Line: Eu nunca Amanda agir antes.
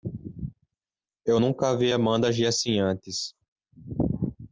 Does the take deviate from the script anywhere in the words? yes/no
yes